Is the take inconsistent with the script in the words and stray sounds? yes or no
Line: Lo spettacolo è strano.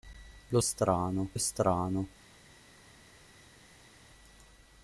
yes